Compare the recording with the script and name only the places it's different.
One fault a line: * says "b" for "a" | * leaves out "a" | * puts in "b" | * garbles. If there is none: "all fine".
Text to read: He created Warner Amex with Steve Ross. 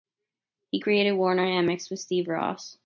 all fine